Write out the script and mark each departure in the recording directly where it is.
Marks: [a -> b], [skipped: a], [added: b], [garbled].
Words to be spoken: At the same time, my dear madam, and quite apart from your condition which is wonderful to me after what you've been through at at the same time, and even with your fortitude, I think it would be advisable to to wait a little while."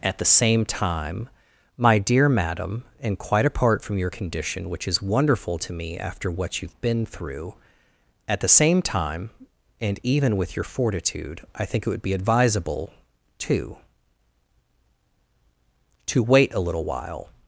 At the same time, my dear madam, and quite apart from your condition which is wonderful to me after what you've been through at [skipped: at] the same time, and even with your fortitude, I think it would be advisable to to wait a little while."